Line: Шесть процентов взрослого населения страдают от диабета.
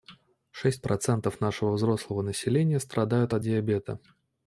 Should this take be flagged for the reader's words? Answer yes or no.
yes